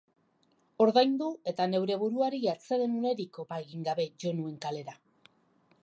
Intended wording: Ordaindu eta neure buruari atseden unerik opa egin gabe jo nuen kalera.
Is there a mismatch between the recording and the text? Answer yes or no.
no